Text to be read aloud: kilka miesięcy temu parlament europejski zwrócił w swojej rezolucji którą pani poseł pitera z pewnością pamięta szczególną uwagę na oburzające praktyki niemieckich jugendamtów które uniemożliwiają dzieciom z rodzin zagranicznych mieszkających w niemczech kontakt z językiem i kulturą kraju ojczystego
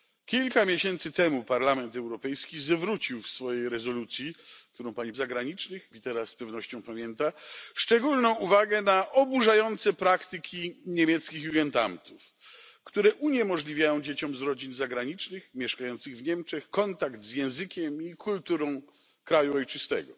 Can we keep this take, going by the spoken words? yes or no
no